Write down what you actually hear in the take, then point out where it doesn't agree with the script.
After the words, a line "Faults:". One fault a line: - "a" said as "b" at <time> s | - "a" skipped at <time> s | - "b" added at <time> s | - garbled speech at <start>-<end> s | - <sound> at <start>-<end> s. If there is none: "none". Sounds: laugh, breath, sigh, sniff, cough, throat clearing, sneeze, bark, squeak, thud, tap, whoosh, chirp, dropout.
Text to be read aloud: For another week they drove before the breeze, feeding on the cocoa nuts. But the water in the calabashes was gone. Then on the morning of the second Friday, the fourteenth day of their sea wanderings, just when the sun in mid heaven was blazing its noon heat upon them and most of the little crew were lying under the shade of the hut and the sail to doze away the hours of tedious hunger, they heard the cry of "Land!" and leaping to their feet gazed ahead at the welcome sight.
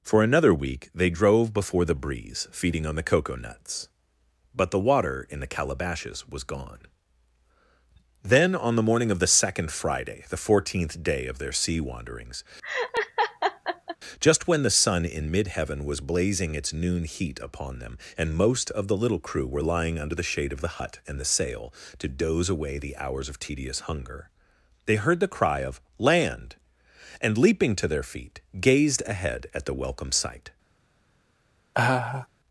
For another week they drove before the breeze, feeding on the cocoa nuts. But the water in the calabashes was gone. Then on the morning of the second Friday, the fourteenth day of their sea wanderings, just when the sun in mid heaven was blazing its noon heat upon them and most of the little crew were lying under the shade of the hut and the sail to doze away the hours of tedious hunger, they heard the cry of "Land!" and leaping to their feet gazed ahead at the welcome sight.
Faults:
- laugh at 12.6-14.0 s
- laugh at 31.7-32.3 s